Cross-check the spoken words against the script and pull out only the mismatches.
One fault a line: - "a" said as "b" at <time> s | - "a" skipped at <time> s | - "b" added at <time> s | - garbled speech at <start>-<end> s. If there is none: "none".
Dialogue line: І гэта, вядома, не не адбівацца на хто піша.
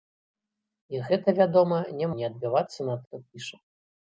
none